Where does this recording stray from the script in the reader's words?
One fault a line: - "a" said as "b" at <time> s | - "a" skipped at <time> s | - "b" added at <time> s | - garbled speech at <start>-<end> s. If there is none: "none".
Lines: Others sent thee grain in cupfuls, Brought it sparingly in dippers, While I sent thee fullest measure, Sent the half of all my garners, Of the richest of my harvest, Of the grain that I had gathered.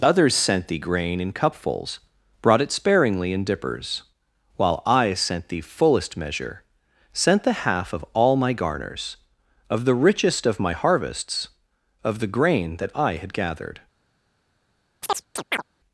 - "harvest" said as "harvests" at 10.7 s